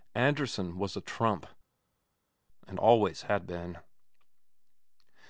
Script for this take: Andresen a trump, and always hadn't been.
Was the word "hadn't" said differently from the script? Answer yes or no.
yes